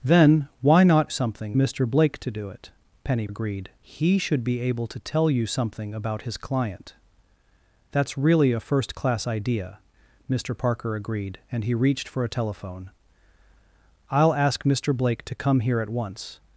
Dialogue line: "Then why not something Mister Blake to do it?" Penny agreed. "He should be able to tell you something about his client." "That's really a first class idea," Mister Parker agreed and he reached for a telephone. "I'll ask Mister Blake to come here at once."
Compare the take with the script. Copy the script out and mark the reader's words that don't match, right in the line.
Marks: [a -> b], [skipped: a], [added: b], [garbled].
"Then why not something Mister Blake to do it?" Penny agreed. "He should be able to tell you something about his client." "That's really a first class idea," Mister Parker agreed and he reached for a telephone. "I'll ask Mister Blake to come here at once."